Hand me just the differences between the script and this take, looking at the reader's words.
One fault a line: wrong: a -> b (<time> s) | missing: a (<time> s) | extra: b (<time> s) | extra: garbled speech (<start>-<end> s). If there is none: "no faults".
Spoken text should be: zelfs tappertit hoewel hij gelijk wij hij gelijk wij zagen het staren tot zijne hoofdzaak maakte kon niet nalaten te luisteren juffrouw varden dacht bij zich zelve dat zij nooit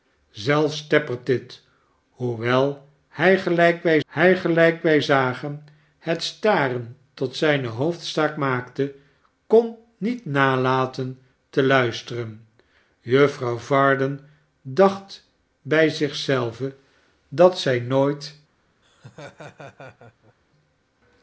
no faults